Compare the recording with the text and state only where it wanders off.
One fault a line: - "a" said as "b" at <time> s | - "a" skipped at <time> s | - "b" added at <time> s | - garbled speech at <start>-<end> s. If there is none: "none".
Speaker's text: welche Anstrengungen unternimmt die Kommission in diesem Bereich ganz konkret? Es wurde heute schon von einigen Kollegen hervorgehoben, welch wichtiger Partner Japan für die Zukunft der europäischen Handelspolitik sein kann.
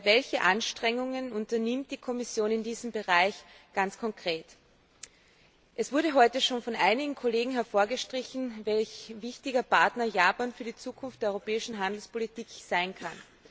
none